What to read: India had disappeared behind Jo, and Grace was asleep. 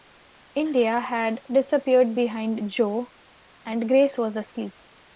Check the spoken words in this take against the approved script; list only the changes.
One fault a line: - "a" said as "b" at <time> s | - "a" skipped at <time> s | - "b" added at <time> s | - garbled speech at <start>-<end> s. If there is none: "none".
none